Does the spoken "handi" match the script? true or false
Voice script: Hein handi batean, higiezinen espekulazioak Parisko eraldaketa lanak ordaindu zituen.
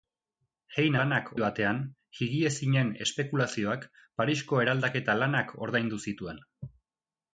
false